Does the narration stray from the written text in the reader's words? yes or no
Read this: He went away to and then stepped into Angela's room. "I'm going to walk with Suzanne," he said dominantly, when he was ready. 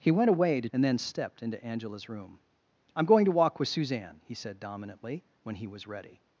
no